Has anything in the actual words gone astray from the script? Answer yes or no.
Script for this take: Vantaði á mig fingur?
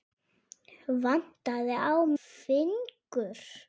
yes